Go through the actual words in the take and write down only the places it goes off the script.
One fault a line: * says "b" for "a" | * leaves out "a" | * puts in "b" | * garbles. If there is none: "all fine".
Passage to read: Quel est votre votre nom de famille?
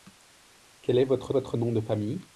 all fine